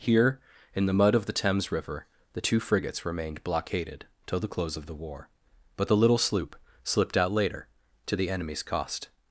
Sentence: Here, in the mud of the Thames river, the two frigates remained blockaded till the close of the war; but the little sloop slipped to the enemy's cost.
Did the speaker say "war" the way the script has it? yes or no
yes